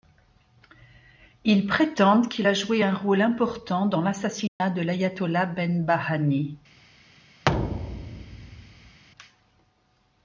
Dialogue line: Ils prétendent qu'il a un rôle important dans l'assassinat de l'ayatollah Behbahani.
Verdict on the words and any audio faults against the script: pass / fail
fail